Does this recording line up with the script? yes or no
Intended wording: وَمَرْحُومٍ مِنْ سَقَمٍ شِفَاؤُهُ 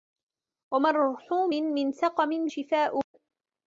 yes